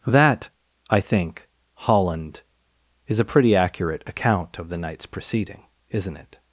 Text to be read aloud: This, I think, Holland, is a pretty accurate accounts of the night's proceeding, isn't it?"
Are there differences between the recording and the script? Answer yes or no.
yes